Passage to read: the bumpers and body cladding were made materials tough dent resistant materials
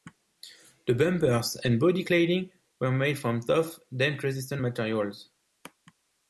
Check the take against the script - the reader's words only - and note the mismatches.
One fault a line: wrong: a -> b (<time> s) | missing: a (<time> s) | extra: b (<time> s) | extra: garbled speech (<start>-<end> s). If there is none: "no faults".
wrong: materials -> from (3.2 s)